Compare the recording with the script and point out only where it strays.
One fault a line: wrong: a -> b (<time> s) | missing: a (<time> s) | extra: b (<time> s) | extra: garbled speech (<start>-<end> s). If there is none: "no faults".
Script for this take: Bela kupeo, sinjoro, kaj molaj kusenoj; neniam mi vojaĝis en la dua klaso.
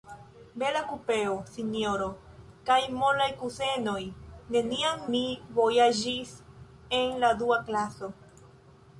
no faults